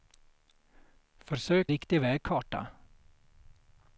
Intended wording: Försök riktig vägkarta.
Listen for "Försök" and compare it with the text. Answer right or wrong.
right